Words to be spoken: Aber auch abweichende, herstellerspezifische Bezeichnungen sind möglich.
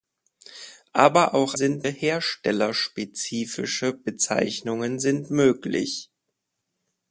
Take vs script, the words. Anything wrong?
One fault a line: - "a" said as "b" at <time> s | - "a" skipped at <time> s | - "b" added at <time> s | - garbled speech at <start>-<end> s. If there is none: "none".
- "abweichende" said as "sind" at 1.5 s